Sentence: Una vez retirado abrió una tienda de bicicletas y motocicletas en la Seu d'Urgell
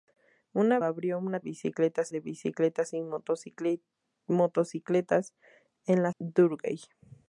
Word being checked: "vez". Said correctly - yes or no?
no